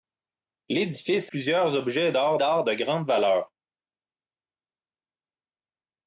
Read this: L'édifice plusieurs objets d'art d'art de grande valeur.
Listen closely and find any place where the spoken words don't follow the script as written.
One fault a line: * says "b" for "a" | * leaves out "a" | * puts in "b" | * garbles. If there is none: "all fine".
all fine